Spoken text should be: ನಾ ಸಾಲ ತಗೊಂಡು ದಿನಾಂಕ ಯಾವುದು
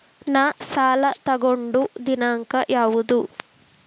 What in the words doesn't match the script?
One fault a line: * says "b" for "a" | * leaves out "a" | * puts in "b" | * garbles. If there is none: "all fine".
all fine